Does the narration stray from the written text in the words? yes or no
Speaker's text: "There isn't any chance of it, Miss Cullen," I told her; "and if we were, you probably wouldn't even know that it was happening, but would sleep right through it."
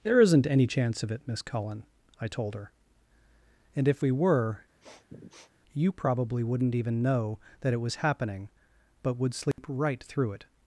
no